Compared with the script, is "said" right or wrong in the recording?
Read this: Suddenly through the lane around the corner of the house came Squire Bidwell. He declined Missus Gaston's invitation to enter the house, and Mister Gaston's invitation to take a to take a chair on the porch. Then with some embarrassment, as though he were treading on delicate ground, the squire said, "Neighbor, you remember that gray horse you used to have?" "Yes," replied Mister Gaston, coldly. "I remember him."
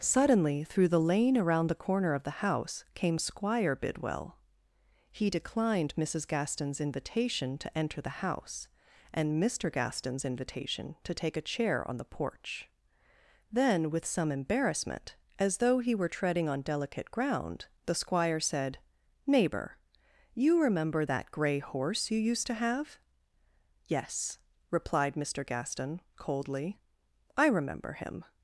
right